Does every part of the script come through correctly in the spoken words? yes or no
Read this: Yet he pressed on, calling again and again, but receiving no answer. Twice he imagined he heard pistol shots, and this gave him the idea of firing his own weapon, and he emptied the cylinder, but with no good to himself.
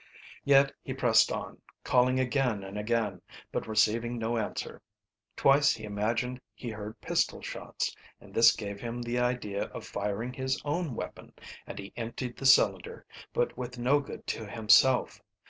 yes